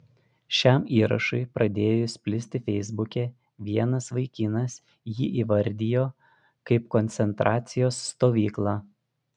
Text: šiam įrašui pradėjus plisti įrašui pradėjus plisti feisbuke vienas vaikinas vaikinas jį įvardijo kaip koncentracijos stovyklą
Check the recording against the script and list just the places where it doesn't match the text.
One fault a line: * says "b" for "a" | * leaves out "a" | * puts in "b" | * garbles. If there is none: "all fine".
* leaves out "įrašui pradėjus plisti"
* leaves out "vaikinas"